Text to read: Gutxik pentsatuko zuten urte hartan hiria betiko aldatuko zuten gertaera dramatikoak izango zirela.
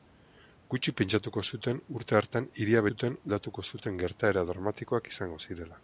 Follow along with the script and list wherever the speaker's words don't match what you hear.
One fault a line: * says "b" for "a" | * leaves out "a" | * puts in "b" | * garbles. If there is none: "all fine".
* says "zuten" for "betiko"